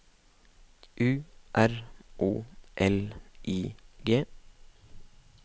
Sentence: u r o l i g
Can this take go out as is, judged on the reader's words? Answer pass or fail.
pass